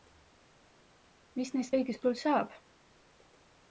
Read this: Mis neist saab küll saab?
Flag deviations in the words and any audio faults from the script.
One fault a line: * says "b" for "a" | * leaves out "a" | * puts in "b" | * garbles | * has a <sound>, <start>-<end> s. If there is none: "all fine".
* says "kõigist" for "saab"